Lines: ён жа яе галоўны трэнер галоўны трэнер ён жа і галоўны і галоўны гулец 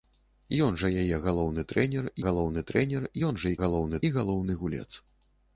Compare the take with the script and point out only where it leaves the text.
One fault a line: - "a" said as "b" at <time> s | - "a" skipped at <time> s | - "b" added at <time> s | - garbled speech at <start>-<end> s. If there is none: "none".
none